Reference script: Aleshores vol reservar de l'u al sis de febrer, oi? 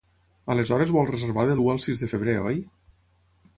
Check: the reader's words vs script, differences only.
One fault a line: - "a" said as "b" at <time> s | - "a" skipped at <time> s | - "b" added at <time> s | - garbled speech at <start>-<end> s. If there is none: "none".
none